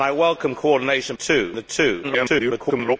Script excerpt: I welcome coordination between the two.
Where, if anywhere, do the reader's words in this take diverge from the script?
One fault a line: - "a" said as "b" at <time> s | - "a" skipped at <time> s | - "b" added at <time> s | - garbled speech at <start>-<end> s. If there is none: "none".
- "between" said as "two" at 1.1 s
- garbled speech at 2.0-3.0 s